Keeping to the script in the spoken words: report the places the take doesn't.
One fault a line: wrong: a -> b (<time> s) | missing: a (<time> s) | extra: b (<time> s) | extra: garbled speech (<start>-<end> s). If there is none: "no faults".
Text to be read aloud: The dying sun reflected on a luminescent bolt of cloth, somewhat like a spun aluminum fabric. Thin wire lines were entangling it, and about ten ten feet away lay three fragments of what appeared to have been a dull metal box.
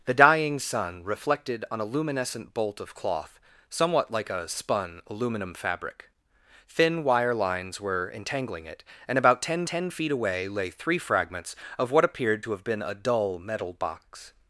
no faults